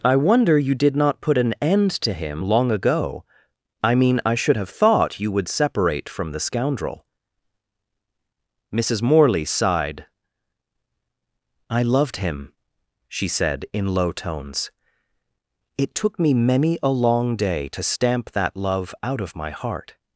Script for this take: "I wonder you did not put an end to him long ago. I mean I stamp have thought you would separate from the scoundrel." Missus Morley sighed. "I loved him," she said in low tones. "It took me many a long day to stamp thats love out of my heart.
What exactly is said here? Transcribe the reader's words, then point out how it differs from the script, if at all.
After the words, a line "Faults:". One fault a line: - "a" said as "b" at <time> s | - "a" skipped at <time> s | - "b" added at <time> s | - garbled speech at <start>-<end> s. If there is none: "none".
"I wonder you did not put an end to him long ago. I mean I should have thought you would separate from the scoundrel." Missus Morley sighed. "I loved him," she said in low tones. "It took me many a long day to stamp that love out of my heart.
Faults:
- "stamp" said as "should" at 4.3 s
- "thats" said as "that" at 18.3 s